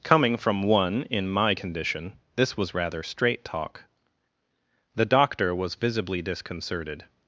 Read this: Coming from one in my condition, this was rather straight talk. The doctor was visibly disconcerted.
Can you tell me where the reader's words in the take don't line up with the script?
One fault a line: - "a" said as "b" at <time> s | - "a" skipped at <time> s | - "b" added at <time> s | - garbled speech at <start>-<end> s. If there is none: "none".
none